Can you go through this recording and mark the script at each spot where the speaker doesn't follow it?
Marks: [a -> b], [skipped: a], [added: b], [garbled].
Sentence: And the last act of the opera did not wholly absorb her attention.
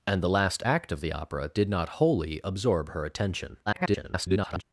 And the last act of the opera did not wholly absorb her attention. [garbled]